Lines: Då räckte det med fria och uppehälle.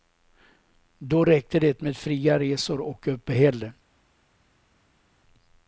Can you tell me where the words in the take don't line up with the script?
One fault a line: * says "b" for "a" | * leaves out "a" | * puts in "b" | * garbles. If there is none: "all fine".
* puts in "resor"